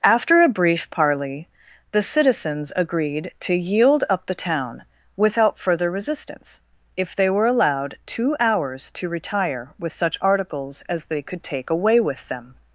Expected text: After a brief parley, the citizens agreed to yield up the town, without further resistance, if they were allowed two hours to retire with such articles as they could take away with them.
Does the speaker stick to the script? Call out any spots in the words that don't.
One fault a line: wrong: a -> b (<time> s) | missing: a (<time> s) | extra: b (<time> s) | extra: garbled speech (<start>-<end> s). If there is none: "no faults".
no faults